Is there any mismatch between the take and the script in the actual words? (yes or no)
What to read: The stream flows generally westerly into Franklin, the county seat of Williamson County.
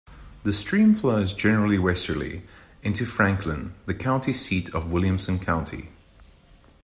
no